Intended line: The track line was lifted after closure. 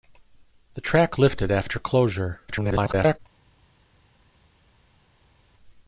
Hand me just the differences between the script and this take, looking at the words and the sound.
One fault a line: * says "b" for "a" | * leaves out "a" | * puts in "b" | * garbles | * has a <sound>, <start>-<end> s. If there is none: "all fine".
* leaves out "line was"
* garbles